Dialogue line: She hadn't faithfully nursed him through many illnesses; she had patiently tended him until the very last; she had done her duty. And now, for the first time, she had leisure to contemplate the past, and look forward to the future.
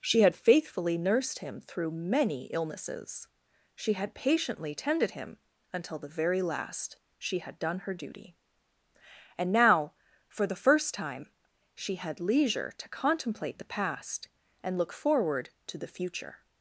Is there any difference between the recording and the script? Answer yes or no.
yes